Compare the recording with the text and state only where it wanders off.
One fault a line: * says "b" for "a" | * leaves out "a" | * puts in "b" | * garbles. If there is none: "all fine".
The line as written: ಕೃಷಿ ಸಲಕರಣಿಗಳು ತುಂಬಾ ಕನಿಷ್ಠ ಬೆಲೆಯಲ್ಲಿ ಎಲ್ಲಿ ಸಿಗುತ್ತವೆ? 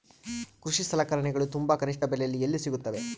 all fine